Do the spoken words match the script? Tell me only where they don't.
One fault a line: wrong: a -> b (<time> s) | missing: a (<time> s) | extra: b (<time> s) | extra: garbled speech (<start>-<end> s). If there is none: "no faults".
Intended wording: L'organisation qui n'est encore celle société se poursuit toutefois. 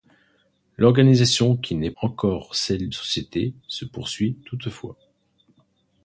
no faults